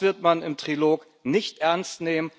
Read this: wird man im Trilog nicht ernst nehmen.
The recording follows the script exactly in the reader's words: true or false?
true